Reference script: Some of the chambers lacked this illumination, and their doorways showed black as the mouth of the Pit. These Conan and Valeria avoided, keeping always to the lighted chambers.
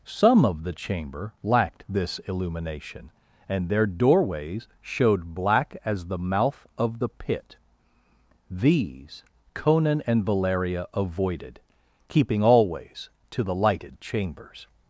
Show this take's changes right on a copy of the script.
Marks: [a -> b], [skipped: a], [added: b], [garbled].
Some of the [chambers -> chamber] lacked this illumination, and their doorways showed black as the mouth of the Pit. These Conan and Valeria avoided, keeping always to the lighted chambers.